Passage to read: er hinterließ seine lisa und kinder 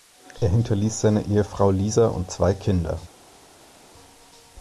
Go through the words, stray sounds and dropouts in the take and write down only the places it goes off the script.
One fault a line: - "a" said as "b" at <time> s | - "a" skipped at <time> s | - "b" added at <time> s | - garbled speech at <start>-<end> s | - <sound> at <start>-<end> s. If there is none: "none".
- "ehefrau" added at 1.3 s
- "zwei" added at 2.3 s